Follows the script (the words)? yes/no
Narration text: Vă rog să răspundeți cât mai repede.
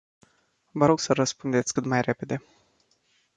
yes